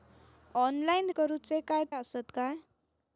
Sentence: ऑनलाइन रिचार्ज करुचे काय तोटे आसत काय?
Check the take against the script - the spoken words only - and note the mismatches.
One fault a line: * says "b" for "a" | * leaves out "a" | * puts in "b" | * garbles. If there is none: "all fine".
* leaves out "रिचार्ज"
* leaves out "तोटे"